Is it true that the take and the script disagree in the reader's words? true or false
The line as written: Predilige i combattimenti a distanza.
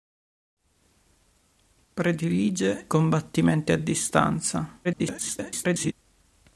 true